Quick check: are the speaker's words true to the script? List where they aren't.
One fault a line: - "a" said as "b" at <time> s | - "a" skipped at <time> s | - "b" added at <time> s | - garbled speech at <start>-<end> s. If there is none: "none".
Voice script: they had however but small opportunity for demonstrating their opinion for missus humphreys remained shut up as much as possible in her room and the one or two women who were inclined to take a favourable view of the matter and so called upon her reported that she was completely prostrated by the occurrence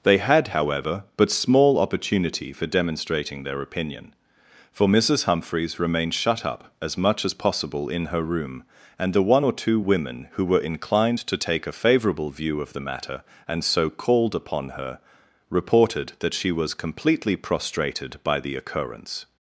none